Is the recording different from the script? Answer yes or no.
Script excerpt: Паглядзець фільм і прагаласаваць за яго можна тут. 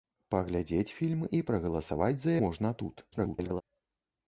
yes